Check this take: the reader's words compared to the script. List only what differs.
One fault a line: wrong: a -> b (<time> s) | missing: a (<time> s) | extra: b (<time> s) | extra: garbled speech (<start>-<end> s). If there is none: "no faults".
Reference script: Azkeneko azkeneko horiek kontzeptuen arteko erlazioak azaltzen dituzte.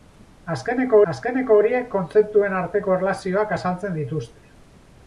no faults